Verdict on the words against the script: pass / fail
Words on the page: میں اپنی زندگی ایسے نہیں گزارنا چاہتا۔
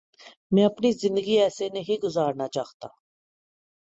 pass